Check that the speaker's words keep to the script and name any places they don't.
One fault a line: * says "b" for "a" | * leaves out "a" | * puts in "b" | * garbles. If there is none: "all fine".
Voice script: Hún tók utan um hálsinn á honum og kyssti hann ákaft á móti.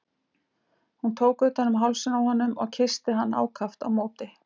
all fine